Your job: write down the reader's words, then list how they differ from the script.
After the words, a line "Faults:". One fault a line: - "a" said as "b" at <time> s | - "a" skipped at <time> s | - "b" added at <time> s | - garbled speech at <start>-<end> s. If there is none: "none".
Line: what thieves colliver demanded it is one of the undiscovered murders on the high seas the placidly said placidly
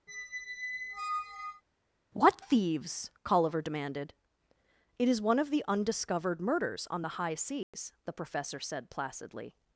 what thieves colliver demanded it is one of the undiscovered murders on the high seas the professor said placidly
Faults:
- "placidly" said as "professor" at 8.1 s